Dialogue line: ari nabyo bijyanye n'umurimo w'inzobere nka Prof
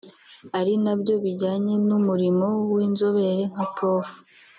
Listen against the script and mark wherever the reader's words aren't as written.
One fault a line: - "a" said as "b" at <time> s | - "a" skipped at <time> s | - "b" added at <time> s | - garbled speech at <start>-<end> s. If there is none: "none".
none